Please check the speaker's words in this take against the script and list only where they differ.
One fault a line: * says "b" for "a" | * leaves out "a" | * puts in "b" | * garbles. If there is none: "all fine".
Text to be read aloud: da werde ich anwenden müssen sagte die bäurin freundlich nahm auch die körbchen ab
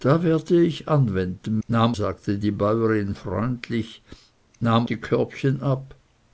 * says "nahm" for "müssen"
* leaves out "auch"